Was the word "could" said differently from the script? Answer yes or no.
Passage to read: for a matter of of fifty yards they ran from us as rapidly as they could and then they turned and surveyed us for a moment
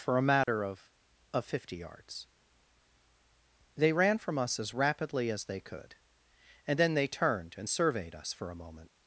no